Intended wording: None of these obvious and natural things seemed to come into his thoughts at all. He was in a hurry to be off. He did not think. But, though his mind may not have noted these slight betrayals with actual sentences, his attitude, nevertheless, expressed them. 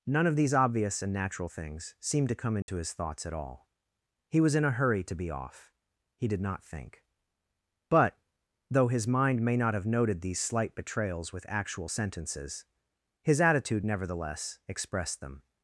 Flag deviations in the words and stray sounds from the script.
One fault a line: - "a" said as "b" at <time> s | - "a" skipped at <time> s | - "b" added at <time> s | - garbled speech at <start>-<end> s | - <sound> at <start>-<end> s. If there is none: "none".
- dropout at 2.6-2.7 s